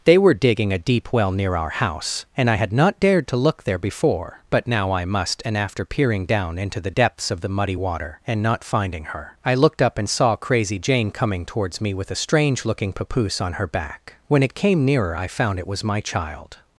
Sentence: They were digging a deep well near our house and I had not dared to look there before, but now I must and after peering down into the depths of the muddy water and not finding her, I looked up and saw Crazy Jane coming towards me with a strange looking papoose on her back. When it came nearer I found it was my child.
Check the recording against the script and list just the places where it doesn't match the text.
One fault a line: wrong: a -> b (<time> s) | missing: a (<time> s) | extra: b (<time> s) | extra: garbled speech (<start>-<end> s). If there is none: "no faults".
no faults